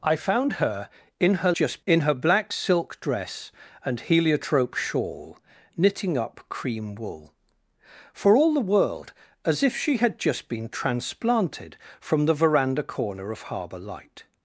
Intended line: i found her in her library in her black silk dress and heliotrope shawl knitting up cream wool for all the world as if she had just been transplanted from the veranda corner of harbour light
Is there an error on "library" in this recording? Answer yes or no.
yes